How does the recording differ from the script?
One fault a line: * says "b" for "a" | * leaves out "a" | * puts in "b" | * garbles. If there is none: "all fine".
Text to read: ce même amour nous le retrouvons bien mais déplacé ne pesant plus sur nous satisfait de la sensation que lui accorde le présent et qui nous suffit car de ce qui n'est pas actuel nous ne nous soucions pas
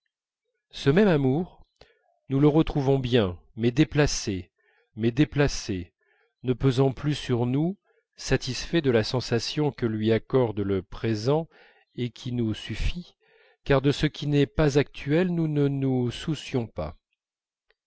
* puts in "mais déplacé"